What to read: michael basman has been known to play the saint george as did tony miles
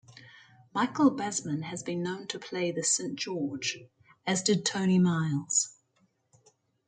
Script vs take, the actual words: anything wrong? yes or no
no